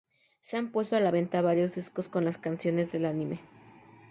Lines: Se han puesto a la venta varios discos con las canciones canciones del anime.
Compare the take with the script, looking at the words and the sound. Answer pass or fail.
fail